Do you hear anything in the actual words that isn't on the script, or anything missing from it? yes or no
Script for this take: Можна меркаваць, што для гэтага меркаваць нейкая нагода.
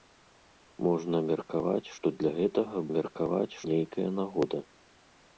no